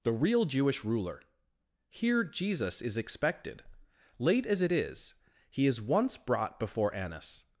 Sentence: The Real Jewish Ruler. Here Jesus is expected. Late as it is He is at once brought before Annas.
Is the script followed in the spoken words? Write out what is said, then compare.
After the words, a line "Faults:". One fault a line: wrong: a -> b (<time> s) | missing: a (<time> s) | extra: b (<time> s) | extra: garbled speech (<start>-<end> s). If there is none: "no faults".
The Real Jewish Ruler. Here Jesus is expected. Late as it is He is once brought before Annas.
Faults:
missing: at (5.8 s)